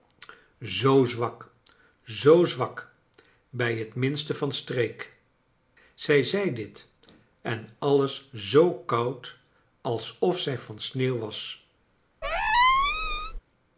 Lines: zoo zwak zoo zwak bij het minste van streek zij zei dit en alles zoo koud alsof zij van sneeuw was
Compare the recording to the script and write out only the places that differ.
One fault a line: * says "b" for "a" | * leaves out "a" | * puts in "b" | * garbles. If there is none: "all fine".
all fine